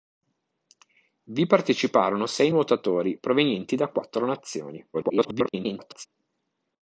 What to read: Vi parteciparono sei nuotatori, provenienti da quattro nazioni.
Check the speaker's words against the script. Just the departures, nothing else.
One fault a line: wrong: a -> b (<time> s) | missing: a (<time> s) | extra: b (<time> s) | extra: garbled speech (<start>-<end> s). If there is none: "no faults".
extra: garbled speech (4.9-6.1 s)